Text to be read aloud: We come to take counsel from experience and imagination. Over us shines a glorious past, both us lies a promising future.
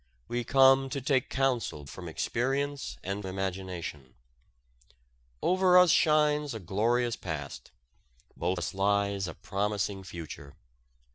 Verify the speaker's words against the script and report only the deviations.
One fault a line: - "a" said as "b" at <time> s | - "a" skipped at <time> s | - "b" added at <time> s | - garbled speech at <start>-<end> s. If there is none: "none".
none